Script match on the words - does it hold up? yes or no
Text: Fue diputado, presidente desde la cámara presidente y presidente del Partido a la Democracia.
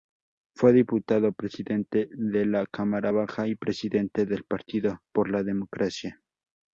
no